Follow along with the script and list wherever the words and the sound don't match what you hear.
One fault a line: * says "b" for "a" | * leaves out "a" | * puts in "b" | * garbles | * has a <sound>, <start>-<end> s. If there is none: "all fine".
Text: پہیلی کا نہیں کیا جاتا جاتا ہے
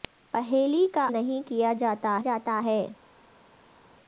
all fine